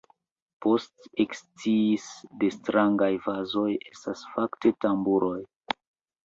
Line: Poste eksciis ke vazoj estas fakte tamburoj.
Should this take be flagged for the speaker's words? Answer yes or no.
yes